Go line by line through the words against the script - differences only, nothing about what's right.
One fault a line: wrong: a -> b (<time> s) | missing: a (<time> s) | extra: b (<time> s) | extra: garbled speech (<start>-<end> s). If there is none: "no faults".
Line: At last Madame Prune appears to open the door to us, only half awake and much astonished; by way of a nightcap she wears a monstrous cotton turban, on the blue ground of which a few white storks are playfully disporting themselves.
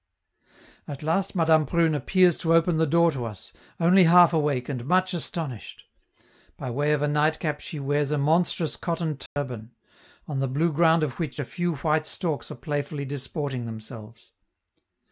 no faults